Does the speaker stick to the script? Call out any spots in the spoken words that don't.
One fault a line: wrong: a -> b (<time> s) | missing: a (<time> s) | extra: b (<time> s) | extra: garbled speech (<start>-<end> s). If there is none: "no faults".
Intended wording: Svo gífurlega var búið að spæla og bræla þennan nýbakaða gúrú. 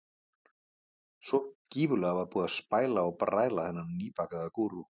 no faults